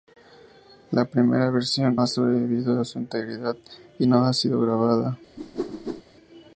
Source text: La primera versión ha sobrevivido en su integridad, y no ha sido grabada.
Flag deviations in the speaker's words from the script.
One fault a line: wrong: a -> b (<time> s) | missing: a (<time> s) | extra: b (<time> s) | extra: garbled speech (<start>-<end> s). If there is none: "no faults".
no faults